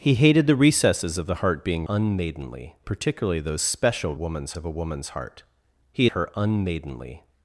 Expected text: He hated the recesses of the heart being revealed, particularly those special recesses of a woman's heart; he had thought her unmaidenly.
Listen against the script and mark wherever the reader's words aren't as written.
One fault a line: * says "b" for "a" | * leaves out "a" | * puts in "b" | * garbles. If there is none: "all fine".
* says "unmaidenly" for "revealed"
* says "woman's" for "recesses"
* leaves out "had thought"